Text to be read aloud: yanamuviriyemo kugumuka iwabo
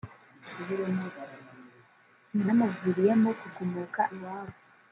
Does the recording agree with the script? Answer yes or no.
yes